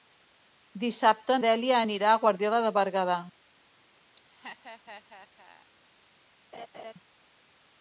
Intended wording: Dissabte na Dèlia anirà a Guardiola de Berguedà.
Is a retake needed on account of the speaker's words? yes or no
yes